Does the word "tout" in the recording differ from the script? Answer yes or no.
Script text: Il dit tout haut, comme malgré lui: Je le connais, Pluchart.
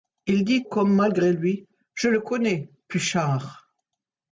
yes